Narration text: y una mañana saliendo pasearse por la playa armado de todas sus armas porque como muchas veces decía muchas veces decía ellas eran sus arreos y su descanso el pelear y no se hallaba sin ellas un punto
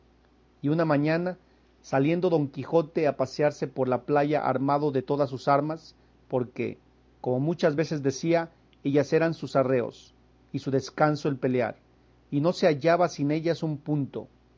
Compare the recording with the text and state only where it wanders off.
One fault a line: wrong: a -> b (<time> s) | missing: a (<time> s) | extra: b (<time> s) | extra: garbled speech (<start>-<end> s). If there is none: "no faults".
extra: don quijote a (2.3 s)
missing: muchas veces decía (8.5 s)